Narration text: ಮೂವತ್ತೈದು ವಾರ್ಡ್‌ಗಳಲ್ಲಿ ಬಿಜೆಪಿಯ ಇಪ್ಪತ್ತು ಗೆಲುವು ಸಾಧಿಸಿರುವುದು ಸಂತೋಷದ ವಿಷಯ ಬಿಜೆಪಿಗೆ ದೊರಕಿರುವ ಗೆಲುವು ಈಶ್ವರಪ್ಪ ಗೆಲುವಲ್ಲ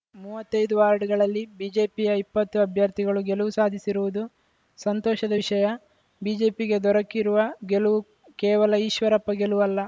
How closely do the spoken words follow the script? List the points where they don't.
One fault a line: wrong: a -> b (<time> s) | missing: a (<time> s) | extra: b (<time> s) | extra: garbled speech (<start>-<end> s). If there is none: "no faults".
extra: ಅಭ್ಯರ್ಥಿಗಳು (2.6 s)
extra: ಕೇವಲ (8.4 s)